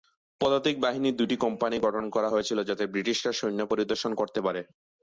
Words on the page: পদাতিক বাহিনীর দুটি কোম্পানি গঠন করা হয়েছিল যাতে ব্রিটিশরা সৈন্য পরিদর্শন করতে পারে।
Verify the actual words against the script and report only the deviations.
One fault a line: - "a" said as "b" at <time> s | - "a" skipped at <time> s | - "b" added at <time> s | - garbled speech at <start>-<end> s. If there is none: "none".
none